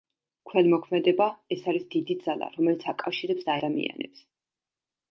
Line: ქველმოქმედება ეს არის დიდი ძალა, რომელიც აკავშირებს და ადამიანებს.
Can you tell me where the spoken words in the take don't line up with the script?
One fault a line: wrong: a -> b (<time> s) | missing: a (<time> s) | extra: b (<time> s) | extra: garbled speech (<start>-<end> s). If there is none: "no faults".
no faults